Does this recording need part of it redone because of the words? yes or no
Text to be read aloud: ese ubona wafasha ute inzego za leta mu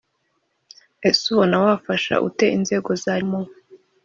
yes